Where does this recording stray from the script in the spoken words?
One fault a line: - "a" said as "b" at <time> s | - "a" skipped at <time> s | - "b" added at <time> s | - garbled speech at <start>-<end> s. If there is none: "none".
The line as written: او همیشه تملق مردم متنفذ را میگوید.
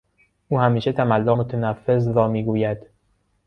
- "مردم" skipped at 1.4 s